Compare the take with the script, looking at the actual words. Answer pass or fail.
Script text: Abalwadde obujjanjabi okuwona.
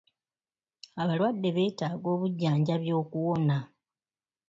fail